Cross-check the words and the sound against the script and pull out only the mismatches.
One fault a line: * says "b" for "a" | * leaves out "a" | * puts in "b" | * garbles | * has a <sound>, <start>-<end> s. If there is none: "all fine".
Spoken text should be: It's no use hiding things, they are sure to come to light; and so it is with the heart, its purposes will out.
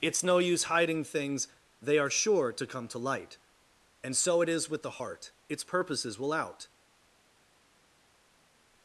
all fine